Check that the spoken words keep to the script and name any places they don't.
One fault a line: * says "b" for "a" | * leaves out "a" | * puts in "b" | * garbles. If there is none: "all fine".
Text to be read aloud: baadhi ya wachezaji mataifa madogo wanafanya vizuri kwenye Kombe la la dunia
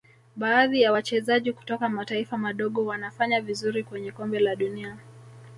* puts in "kutoka"
* leaves out "la"